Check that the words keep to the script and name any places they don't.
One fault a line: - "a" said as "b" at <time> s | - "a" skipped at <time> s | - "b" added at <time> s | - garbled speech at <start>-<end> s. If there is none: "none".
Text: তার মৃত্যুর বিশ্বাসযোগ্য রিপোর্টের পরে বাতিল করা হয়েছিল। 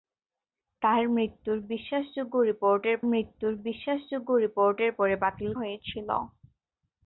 - "মৃত্যুর বিশ্বাসযোগ্য রিপোর্টের" added at 3.0 s
- "করা" skipped at 5.5 s